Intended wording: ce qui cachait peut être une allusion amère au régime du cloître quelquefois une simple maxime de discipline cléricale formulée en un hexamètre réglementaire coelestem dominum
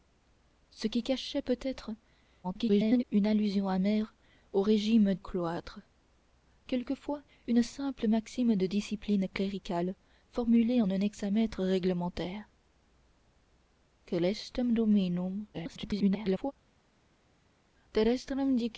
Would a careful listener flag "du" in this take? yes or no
yes